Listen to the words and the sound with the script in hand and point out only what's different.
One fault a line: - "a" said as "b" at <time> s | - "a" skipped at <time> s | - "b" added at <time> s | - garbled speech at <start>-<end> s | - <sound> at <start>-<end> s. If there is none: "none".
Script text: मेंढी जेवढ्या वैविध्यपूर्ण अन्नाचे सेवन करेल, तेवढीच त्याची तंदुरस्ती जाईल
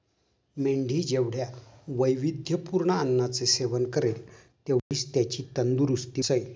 - dropout at 4.8-4.9 s